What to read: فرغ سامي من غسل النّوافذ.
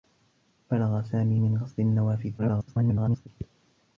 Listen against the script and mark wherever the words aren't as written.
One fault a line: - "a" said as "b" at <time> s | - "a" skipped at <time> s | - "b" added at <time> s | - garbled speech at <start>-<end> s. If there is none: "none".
- garbled speech at 2.4-3.3 s